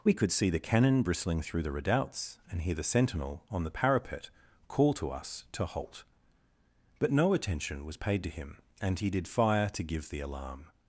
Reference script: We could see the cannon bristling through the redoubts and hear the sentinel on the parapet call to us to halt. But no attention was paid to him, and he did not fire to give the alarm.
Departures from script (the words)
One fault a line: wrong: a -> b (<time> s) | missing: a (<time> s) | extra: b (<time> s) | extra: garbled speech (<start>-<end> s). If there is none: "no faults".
missing: not (9.3 s)